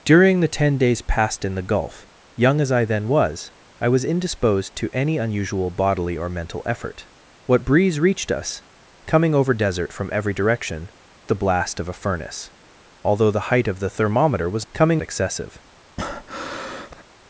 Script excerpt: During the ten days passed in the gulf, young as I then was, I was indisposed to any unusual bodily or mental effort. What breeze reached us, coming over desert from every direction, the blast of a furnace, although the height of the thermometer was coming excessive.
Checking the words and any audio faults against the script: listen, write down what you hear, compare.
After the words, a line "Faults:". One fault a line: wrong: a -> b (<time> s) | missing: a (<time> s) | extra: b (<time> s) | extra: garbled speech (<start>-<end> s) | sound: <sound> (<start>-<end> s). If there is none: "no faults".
During the ten days passed in the gulf, young as I then was, I was indisposed to any unusual bodily or mental effort. What breeze reached us, coming over desert from every direction, the blast of a furnace, although the height of the thermometer was coming excessive.
Faults:
sound: breath (16.0-17.0 s)